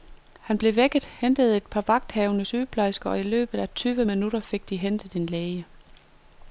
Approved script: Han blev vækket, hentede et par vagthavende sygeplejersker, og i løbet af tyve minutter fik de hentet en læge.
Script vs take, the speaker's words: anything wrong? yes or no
no